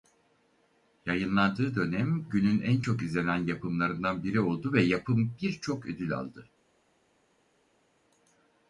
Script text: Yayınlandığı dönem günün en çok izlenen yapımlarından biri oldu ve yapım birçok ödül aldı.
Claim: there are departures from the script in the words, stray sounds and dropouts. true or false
false